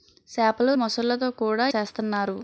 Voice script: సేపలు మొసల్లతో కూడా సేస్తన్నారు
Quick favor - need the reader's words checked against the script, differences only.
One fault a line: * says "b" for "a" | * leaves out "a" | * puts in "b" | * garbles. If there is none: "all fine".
all fine